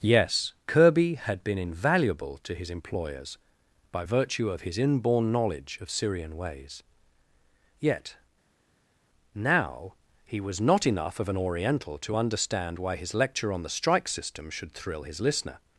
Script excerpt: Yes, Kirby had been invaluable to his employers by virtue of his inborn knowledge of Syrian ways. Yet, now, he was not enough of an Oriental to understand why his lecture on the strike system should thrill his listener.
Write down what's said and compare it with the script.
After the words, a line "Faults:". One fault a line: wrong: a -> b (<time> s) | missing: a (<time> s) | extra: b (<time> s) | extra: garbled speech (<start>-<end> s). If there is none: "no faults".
Yes, Kirby had been invaluable to his employers by virtue of his inborn knowledge of Syrian ways. Yet, now, he was not enough of an Oriental to understand why his lecture on the strike system should thrill his listener.
Faults:
no faults